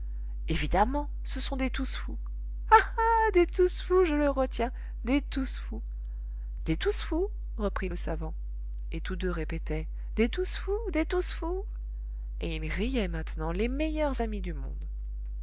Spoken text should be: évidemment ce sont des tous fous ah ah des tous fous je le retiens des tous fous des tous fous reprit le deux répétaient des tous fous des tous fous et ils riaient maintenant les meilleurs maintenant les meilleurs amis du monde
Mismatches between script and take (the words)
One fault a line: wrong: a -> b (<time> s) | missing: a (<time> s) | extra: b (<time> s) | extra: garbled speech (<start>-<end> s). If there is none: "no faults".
extra: savant et tous (7.9 s)
missing: maintenant les meilleurs (14.2 s)